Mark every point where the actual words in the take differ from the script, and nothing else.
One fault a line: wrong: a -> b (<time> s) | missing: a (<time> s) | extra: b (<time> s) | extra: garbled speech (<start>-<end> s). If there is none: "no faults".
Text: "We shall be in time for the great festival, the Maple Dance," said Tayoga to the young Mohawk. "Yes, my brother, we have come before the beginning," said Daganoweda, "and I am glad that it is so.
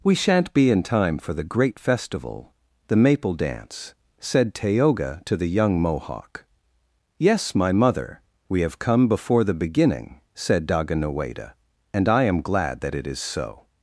wrong: shall -> shan't (0.1 s)
wrong: brother -> mother (7.7 s)